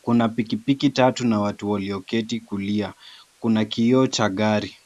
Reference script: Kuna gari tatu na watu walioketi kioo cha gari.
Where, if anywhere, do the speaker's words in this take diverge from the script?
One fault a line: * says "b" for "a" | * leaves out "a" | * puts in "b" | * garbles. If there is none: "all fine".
* says "pikipiki" for "gari"
* puts in "kulia Kuna"